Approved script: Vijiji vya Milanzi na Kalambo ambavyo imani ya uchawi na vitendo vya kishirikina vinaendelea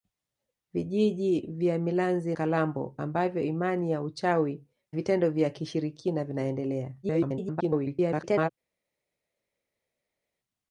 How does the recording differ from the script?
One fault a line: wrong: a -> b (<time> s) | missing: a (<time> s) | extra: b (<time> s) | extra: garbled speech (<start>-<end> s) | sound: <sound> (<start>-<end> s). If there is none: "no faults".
missing: na (2.4 s)
missing: na (4.6 s)
extra: garbled speech (7.0-8.5 s)